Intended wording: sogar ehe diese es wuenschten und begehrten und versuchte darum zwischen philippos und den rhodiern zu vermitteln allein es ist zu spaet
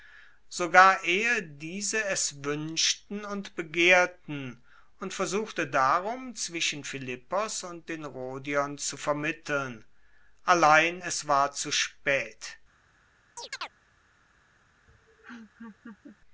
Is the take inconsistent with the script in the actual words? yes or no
yes